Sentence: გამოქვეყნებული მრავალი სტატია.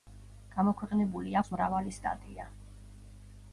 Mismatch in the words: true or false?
true